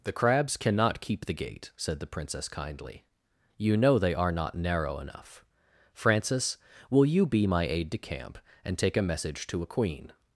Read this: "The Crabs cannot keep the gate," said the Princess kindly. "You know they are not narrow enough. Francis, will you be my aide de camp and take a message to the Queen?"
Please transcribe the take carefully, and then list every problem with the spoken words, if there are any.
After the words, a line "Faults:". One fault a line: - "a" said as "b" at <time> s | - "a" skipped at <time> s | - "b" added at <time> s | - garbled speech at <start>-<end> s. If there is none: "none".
"The Crabs cannot keep the gate," said the Princess kindly. "You know they are not narrow enough. Francis, will you be my aide de camp and take a message to a Queen?"
Faults:
- "the" said as "a" at 9.6 s